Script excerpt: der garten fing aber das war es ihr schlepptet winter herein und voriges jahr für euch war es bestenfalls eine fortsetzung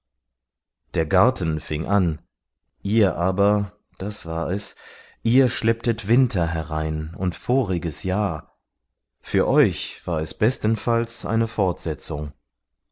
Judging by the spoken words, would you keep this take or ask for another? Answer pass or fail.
fail